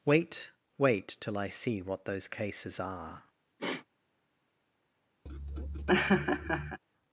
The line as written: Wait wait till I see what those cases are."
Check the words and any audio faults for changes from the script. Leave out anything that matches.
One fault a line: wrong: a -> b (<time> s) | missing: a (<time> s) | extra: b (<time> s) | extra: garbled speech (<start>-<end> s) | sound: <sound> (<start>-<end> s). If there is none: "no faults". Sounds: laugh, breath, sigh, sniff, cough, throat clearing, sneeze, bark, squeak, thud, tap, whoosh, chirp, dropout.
sound: sniff (3.6-3.9 s)
sound: laugh (5.3-6.8 s)